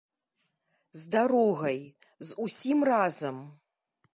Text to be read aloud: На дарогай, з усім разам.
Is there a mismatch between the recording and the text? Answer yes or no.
yes